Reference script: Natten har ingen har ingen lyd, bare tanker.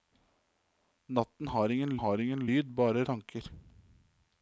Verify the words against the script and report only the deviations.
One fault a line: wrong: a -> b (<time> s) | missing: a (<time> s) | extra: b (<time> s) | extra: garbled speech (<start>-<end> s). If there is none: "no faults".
no faults